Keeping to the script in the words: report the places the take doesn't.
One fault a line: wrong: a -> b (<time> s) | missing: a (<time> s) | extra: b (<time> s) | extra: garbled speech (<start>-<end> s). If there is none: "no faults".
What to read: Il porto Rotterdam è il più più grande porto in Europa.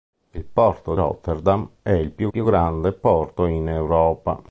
no faults